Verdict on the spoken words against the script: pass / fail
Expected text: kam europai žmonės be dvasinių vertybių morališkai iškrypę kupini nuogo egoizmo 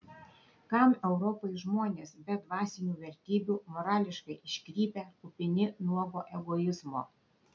pass